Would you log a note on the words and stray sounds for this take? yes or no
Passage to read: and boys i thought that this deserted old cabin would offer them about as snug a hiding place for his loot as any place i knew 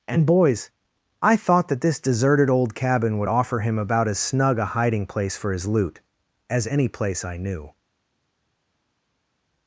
yes